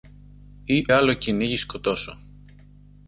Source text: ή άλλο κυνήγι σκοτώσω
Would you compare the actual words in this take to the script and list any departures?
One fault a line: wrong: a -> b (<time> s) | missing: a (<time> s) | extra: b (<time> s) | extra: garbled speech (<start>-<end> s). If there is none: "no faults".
no faults